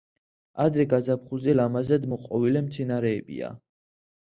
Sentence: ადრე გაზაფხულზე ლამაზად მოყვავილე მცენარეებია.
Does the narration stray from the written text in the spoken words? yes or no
no